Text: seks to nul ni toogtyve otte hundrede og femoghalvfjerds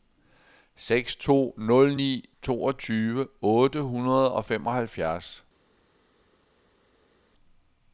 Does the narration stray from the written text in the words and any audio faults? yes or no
no